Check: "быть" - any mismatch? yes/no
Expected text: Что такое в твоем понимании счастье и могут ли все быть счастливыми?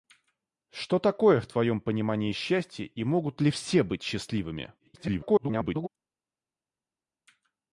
no